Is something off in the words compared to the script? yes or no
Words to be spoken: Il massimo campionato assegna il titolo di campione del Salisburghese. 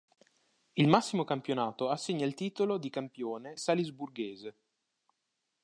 yes